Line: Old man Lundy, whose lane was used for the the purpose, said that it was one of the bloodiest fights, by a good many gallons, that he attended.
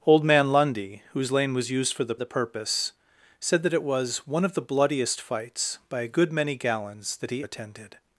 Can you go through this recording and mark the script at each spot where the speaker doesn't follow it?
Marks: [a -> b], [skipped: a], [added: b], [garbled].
Old man Lundy, whose lane was used for the the purpose, said that it was one of the bloodiest fights, by a good many gallons, that he attended.